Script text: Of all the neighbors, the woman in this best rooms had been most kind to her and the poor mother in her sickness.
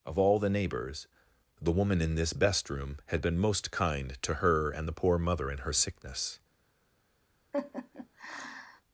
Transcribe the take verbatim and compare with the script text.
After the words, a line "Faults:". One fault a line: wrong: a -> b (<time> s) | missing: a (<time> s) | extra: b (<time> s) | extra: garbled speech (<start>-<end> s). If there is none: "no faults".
Of all the neighbors, the woman in this best room had been most kind to her and the poor mother in her sickness.
Faults:
wrong: rooms -> room (2.7 s)